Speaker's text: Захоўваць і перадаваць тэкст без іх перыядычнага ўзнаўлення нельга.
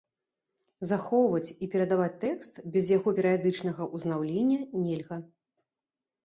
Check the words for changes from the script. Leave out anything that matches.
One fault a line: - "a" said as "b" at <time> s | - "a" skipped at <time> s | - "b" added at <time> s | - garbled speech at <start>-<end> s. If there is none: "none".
- "іх" said as "яго" at 3.0 s